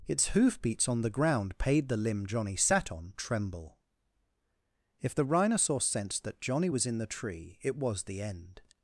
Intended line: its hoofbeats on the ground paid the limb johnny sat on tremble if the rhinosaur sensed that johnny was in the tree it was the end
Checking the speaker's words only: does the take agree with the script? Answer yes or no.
yes